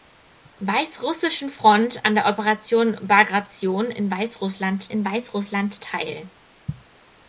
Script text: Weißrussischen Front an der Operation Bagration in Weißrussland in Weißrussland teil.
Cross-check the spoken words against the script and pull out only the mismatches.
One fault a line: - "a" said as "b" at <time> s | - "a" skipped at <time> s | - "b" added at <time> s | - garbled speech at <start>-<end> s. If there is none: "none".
none